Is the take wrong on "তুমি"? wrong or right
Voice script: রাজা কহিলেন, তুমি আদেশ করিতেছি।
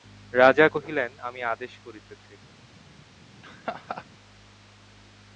wrong